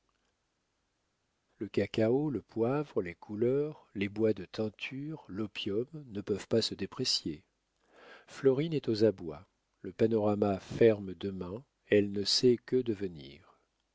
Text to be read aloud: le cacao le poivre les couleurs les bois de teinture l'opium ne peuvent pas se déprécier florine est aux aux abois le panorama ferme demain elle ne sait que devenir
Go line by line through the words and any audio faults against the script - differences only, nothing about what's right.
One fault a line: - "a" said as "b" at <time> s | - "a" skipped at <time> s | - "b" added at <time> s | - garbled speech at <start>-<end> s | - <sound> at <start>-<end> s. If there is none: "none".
- "aux" skipped at 9.0 s